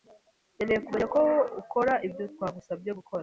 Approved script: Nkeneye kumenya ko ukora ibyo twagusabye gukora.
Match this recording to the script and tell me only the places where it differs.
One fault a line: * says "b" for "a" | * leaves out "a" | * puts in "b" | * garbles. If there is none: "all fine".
all fine